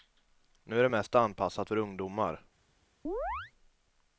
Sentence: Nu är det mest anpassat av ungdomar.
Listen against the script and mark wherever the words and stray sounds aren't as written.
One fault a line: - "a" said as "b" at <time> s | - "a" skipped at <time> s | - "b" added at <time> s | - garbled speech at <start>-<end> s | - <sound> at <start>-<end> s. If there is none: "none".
- "av" said as "för" at 1.6 s
- chirp at 3.0-3.5 s